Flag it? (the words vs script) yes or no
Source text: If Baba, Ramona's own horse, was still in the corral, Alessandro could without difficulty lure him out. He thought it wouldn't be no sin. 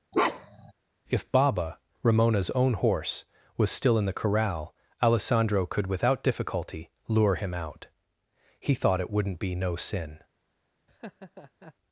no